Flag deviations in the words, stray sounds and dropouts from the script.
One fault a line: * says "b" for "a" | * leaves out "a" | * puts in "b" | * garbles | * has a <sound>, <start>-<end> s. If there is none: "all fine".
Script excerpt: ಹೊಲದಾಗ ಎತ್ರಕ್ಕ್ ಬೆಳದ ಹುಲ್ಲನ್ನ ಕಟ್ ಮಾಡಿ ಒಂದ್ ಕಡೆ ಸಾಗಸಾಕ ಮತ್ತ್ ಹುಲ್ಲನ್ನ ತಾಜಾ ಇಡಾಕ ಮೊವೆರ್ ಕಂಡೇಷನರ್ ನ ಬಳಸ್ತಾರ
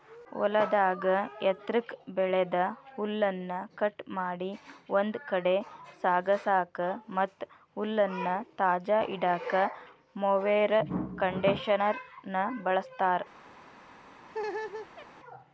* has a laugh, 14.3-15.1 s